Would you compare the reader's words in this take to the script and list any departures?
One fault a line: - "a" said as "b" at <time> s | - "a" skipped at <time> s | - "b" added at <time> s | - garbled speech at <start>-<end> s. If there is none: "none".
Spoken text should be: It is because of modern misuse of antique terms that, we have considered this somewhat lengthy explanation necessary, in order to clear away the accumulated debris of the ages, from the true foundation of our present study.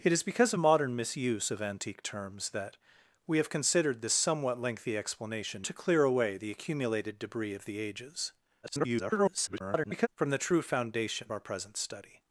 - "necessary in order" skipped at 5.7 s
- garbled speech at 8.6-10.1 s
- "of" skipped at 11.3 s